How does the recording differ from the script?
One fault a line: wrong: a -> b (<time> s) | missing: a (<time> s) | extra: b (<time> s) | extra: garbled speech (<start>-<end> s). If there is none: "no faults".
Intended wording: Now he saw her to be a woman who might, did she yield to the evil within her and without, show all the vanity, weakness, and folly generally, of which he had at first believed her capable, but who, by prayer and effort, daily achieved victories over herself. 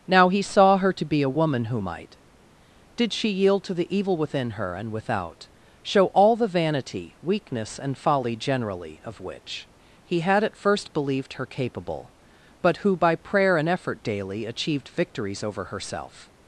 no faults